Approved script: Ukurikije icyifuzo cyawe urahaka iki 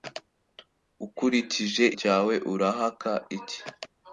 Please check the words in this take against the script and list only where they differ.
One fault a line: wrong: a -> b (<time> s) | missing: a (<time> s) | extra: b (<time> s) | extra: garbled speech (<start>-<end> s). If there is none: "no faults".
missing: icyifuzo (1.9 s)